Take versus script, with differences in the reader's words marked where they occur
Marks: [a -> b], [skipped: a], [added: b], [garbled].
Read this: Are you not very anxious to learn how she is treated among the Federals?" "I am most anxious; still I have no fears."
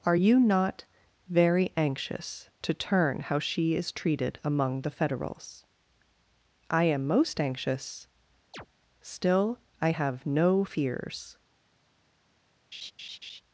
Are you not very anxious to [learn -> turn] how she is treated among the Federals?" "I am most anxious; still I have no fears."